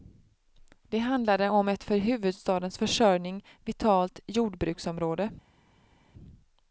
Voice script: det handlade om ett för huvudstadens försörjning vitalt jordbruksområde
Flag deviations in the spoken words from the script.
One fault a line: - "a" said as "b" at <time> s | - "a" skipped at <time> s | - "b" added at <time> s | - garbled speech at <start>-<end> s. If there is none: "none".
none